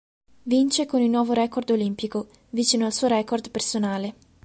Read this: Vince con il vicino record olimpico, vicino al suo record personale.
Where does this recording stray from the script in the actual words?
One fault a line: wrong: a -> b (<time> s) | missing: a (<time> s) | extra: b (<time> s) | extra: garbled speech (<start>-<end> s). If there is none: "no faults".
wrong: vicino -> nuovo (1.1 s)